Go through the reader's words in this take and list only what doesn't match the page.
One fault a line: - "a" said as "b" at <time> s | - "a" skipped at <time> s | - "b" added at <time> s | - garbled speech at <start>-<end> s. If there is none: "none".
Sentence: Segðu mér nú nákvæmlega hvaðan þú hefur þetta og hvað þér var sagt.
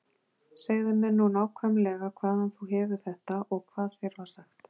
none